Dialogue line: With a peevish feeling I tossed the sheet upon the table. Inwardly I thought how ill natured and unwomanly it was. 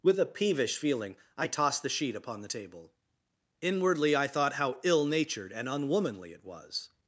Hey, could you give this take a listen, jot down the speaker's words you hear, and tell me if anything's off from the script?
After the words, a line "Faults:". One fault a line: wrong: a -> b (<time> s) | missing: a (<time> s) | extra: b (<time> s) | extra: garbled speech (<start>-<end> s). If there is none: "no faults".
With a peevish feeling I tossed the sheet upon the table. Inwardly I thought how ill natured and unwomanly it was.
Faults:
no faults